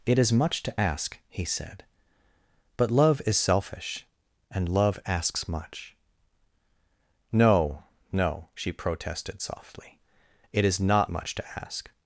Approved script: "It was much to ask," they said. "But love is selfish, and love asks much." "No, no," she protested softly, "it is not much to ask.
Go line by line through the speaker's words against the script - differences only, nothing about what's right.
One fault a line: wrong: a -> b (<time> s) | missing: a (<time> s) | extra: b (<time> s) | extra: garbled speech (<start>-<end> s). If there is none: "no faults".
wrong: was -> is (0.2 s)
wrong: they -> he (1.3 s)